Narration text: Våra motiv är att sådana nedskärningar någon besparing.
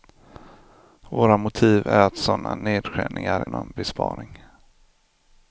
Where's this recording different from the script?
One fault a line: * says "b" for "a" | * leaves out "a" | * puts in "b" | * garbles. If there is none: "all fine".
all fine